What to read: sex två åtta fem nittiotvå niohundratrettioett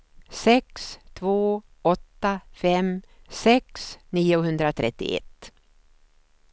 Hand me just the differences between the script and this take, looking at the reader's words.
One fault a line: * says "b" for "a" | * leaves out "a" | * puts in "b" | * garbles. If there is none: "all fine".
* says "sex" for "nittiotvå"